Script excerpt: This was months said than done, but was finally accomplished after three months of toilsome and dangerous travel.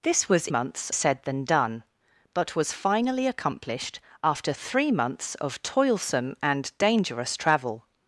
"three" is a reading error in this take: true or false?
false